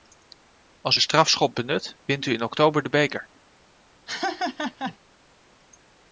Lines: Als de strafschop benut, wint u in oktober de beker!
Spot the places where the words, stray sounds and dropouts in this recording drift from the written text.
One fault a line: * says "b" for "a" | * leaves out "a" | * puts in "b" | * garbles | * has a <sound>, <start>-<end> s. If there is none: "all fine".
* has a laugh, 4.1-5.0 s